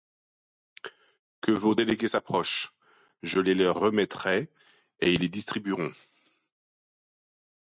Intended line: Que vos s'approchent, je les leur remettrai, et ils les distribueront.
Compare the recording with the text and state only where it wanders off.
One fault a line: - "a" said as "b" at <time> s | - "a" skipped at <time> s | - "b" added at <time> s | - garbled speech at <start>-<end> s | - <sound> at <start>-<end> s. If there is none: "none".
- "délégués" added at 1.8 s